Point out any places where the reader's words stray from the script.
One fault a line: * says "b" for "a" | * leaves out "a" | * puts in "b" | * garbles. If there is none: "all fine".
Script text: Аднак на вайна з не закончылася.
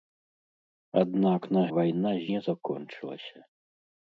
all fine